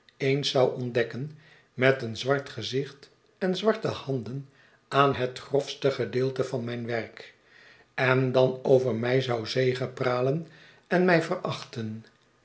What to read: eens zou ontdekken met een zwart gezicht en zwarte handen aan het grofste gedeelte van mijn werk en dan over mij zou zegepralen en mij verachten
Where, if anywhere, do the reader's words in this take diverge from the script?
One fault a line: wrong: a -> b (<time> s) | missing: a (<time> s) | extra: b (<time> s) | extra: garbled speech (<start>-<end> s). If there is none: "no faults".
no faults